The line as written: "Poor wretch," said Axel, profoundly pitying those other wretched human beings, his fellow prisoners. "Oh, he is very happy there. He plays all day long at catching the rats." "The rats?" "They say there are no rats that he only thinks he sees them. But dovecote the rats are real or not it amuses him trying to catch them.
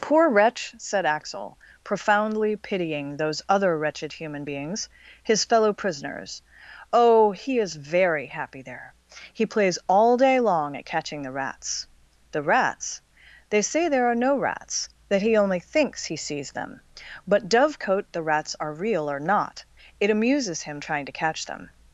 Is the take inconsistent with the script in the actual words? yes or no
no